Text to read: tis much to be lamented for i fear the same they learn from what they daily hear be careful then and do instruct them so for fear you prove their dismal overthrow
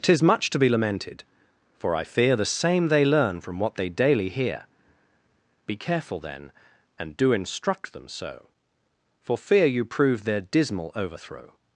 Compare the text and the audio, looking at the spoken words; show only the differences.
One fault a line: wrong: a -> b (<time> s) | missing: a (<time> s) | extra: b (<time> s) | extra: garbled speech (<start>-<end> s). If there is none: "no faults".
no faults